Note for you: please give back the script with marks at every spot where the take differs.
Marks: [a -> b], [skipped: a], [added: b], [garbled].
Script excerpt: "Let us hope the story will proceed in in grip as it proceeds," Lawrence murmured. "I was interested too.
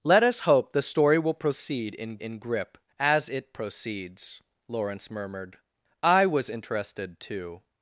"Let us hope the story will proceed in in grip as it proceeds," Lawrence murmured. "I was interested too.